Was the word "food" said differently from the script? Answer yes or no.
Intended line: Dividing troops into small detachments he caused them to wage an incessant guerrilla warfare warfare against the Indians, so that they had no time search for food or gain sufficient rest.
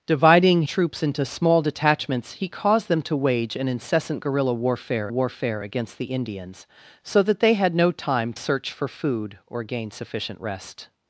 no